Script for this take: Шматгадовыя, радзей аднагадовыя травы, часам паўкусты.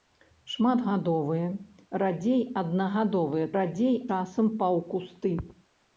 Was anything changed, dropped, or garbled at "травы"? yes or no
yes